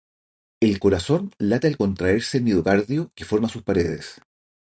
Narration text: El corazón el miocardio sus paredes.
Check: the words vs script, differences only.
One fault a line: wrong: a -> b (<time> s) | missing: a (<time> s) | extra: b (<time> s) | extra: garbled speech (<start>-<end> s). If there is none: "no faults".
extra: late al contraerse (1.4 s)
extra: que forma (3.1 s)